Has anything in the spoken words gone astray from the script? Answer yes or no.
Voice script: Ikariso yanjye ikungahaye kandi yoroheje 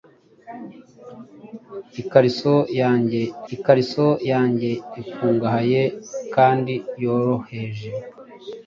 yes